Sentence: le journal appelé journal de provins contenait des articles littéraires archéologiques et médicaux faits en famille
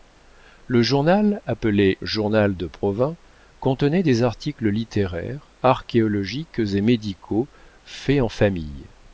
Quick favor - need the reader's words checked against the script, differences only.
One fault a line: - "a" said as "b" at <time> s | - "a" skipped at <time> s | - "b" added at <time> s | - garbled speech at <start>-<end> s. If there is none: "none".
none